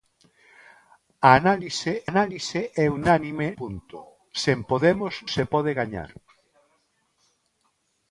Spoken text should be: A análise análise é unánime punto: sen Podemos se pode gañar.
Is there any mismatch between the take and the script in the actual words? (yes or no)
no